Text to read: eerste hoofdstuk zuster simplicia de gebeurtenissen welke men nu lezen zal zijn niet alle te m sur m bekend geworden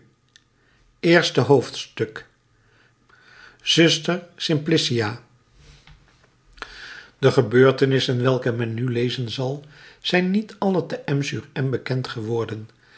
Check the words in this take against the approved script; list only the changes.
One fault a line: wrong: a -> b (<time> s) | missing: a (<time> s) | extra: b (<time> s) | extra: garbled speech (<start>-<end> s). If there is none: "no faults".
no faults